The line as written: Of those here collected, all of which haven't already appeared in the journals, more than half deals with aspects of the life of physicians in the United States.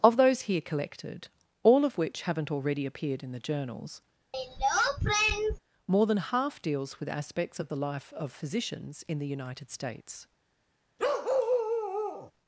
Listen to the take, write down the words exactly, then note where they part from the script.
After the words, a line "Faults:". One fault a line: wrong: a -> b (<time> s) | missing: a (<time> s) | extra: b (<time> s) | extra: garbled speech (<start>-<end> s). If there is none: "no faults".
Of those here collected, all of which haven't already appeared in the journals, more than half deals with aspects of the life of physicians in the United States.
Faults:
no faults